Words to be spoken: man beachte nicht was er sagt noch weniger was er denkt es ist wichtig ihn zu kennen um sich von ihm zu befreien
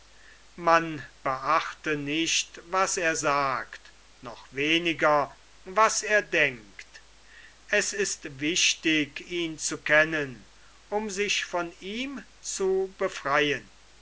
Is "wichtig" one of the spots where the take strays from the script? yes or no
no